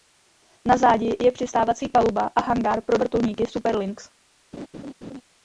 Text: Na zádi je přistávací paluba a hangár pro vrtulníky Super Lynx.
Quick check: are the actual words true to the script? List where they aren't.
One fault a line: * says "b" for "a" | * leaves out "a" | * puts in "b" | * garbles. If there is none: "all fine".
all fine